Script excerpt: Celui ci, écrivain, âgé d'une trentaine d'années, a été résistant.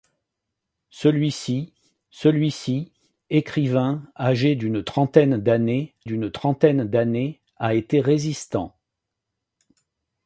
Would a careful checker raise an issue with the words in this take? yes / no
yes